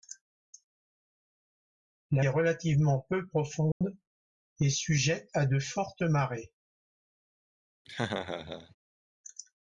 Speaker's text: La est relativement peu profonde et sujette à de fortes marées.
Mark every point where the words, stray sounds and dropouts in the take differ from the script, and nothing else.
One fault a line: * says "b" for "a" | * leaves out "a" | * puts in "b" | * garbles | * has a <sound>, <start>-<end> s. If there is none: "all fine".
* has a dropout, 3.7-3.8 s
* has a laugh, 7.9-8.8 s